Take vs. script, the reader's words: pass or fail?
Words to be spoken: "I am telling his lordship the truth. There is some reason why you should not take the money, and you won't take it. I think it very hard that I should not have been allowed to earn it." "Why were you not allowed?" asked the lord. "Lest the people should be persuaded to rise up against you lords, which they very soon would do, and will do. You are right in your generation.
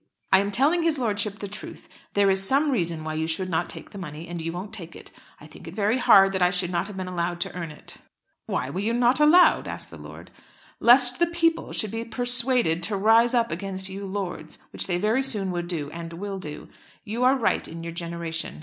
pass